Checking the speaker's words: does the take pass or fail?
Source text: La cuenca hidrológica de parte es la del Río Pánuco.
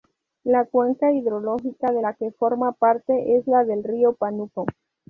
fail